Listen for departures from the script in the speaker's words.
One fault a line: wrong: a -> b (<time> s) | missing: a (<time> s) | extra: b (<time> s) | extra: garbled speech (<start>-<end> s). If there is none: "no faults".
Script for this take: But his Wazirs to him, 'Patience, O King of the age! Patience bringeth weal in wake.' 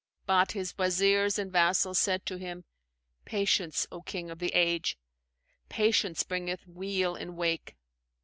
extra: and vassals said (1.4 s)